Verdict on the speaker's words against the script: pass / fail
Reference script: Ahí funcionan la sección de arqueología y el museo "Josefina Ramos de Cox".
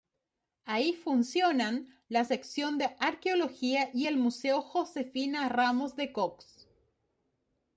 pass